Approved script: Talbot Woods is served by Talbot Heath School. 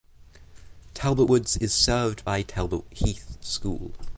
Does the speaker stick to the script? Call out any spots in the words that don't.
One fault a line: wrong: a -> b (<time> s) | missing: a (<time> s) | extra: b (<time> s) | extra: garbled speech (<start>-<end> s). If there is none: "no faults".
no faults